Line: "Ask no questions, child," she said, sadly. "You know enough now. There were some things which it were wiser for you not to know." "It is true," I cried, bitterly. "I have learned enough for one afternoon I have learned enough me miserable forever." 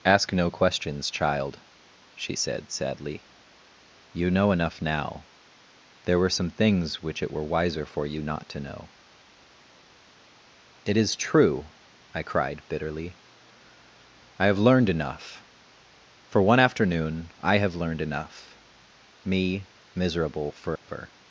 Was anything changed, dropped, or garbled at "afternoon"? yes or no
no